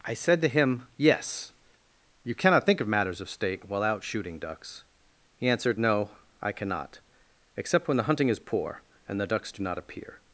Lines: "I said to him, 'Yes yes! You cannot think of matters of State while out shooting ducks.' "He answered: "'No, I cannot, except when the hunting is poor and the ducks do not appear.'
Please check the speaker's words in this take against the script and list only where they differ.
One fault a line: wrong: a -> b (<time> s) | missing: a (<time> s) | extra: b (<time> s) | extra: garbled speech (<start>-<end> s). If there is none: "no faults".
missing: yes (1.5 s)